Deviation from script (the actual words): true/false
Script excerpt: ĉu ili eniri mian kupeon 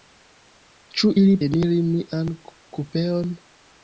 false